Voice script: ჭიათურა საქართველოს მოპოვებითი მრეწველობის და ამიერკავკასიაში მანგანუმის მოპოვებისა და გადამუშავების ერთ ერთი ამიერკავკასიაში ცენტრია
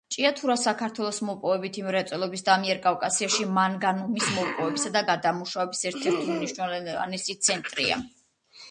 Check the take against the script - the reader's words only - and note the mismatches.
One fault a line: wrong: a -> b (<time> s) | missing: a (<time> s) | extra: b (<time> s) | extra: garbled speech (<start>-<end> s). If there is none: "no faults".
wrong: ამიერკავკასიაში -> უმნიშვნელოვანესი (6.4 s)